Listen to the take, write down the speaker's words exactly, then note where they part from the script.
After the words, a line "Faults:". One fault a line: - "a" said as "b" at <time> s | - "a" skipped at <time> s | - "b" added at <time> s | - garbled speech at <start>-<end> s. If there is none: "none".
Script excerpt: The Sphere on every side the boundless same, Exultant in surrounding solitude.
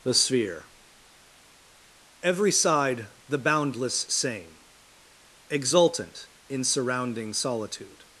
The Sphere every side the boundless same, Exultant in surrounding solitude.
Faults:
- "on" skipped at 0.7 s